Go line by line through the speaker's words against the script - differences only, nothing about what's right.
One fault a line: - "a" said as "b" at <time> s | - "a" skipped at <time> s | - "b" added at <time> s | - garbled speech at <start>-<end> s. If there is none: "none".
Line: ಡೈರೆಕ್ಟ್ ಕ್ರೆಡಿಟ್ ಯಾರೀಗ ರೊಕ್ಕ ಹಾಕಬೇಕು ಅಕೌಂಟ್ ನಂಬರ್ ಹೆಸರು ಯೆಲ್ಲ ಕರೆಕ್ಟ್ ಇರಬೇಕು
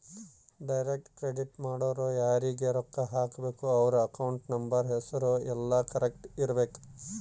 - "ಮಾಡೊರು" added at 1.6 s
- "ಅವ್ರ" added at 3.8 s